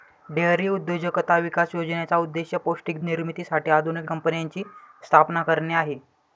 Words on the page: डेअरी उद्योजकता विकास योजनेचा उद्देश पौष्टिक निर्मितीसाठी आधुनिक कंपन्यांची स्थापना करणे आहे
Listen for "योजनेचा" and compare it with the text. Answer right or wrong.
right